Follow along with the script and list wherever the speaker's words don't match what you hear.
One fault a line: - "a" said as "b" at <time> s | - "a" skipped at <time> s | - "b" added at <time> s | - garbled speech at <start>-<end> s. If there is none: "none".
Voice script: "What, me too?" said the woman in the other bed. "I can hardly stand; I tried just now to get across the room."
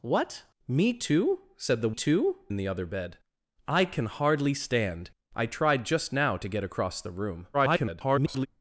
- "woman" said as "too" at 1.9 s
- garbled speech at 7.5-8.5 s